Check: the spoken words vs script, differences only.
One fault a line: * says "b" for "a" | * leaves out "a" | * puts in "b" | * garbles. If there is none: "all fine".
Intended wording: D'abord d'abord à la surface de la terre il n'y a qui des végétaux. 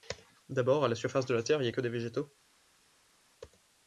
* leaves out "d'abord"
* says "que" for "qui"